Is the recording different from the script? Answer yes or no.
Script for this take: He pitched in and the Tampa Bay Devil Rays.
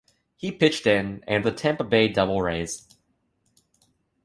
no